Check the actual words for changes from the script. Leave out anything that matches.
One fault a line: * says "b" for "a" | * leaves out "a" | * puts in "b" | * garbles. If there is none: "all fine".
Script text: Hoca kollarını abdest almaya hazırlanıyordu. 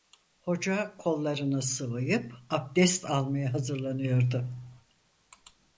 * puts in "sıvayıp"